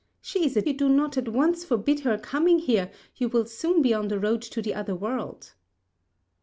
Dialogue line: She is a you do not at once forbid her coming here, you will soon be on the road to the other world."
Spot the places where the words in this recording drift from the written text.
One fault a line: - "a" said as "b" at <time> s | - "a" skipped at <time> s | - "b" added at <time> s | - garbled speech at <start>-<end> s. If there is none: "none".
none